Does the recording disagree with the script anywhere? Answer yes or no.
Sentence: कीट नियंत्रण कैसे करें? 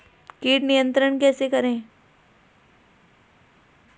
no